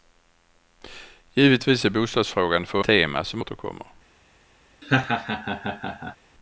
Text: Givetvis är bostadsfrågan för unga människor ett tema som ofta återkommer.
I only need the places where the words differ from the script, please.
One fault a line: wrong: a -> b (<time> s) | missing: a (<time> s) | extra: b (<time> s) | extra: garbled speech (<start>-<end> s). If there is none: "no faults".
missing: unga människor ett (2.8 s)
missing: ofta (3.4 s)